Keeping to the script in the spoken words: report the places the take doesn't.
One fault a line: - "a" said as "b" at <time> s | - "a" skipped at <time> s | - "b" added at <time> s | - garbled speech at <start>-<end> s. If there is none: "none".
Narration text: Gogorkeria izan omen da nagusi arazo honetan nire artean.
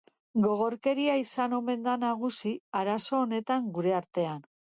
- "nire" said as "gure" at 3.8 s